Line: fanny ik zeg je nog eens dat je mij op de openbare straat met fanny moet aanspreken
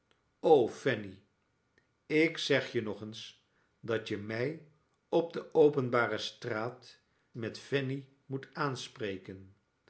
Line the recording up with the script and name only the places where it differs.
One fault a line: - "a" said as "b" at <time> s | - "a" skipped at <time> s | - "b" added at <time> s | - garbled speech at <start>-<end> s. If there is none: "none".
none